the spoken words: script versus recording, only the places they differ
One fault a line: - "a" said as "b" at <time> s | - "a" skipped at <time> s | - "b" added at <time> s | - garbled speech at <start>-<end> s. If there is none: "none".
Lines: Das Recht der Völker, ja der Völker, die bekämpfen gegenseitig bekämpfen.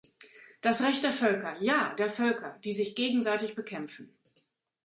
- "bekämpfen" said as "sich" at 2.7 s